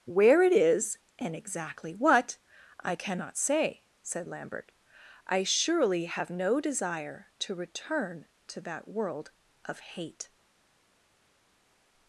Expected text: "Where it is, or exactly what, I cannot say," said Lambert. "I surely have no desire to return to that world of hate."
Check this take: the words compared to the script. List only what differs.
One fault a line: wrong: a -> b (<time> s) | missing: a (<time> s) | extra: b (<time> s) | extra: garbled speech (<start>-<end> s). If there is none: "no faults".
wrong: or -> and (1.2 s)